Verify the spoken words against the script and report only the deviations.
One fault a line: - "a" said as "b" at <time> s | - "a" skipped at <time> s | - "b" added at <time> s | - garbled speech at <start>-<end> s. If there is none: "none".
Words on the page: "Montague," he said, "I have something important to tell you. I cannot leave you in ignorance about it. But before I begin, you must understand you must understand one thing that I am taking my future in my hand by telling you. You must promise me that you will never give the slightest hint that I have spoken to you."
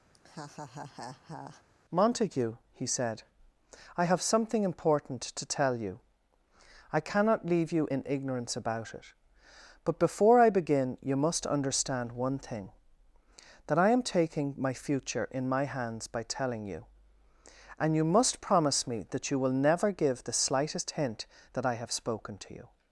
- "you must understand" skipped at 12.1 s
- "hand" said as "hands" at 15.7 s
- "And" added at 17.8 s